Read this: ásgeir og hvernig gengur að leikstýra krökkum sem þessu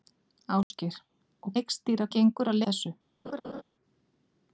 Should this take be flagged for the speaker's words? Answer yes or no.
yes